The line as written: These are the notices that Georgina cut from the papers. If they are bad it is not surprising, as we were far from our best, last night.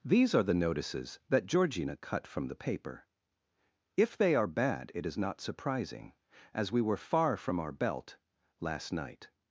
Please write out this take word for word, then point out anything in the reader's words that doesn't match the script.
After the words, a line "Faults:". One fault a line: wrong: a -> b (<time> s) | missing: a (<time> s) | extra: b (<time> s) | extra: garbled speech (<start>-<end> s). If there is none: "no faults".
These are the notices that Georgina cut from the paper. If they are bad it is not surprising, as we were far from our belt, last night.
Faults:
wrong: papers -> paper (2.5 s)
wrong: best -> belt (7.7 s)